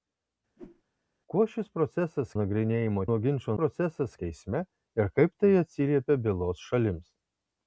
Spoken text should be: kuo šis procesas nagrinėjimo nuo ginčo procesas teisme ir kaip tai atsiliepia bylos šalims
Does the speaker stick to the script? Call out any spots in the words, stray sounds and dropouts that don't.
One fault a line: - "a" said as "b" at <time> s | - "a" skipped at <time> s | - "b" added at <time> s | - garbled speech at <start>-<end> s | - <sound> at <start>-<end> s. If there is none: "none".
- whoosh at 0.6-0.8 s